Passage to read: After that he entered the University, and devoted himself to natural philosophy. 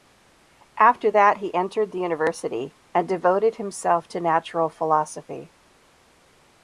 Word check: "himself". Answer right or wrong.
right